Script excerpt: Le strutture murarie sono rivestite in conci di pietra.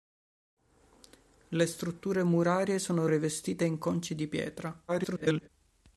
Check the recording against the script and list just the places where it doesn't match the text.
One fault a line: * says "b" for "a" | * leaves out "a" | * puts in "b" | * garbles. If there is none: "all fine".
* garbles